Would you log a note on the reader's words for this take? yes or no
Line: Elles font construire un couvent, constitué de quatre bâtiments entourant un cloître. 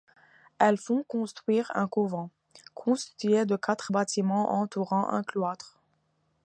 no